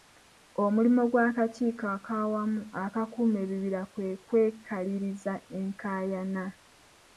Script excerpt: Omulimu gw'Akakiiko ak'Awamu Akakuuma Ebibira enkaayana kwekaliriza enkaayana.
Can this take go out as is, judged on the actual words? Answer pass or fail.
fail